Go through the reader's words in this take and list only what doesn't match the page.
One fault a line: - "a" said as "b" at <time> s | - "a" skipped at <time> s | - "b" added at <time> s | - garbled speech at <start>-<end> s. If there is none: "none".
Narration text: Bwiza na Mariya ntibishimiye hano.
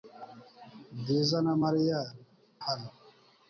- "ntibishimiye" skipped at 2.0 s